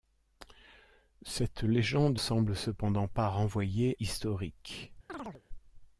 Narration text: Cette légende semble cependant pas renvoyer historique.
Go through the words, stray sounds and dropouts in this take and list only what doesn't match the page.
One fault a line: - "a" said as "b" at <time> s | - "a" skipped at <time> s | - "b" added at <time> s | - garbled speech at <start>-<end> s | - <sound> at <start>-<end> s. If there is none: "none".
- chirp at 5.1-5.4 s